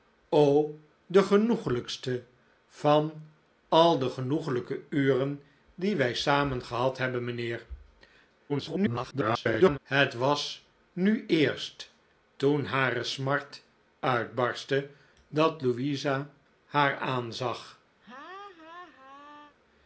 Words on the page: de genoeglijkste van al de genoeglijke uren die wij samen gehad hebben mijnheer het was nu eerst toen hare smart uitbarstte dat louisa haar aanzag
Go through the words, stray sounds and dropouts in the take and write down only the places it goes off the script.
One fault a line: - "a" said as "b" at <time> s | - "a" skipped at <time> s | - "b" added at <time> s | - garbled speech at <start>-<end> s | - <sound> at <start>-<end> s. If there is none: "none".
- garbled speech at 8.5-9.8 s
- laugh at 18.0-19.6 s